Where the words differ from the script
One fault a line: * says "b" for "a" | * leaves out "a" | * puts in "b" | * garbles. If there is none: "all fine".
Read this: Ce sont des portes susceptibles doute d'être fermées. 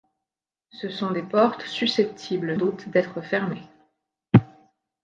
all fine